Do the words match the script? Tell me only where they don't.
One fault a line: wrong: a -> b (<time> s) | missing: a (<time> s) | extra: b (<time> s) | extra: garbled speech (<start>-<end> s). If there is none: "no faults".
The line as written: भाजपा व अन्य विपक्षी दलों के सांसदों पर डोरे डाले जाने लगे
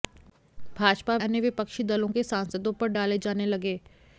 missing: व (1.2 s)
missing: डोरे (2.9 s)